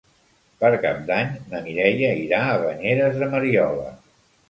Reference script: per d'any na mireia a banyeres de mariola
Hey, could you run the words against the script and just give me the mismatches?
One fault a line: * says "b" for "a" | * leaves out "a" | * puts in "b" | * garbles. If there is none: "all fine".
* puts in "cap"
* puts in "irà"